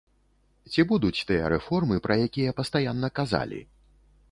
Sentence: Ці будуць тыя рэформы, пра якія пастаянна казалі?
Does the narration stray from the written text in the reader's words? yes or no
no